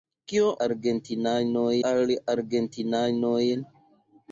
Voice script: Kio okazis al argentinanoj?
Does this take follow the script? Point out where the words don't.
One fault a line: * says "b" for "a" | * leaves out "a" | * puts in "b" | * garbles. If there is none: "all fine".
* says "argentinanoj" for "okazis"